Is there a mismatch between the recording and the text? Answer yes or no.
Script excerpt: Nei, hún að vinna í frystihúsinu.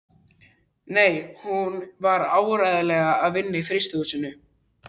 yes